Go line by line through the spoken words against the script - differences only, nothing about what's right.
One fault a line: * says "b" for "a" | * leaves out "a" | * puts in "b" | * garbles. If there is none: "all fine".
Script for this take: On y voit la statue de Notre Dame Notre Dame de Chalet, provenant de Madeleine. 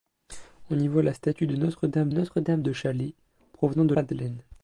all fine